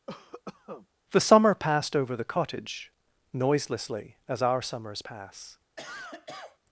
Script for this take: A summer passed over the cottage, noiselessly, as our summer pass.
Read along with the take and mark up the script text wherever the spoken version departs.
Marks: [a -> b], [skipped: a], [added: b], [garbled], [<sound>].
[cough] [A -> THE] summer passed over the cottage, noiselessly, as our [summer -> summers] pass. [cough]